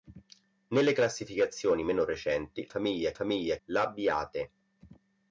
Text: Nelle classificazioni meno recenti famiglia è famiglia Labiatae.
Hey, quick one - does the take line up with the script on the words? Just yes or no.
yes